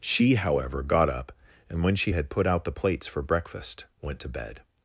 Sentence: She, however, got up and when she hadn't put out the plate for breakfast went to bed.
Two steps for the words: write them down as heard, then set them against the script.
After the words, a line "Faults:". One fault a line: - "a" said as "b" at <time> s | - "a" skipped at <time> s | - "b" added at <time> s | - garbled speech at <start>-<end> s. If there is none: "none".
She, however, got up and when she had put out the plates for breakfast went to bed.
Faults:
- "hadn't" said as "had" at 2.1 s
- "plate" said as "plates" at 2.7 s